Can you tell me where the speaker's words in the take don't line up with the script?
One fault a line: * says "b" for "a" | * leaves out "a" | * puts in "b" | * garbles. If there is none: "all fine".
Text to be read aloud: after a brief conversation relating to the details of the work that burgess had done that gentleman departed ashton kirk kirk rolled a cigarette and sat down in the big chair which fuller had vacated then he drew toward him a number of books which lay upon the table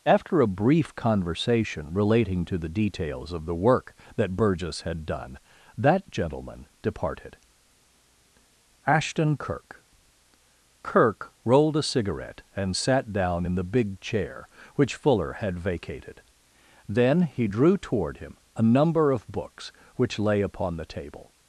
all fine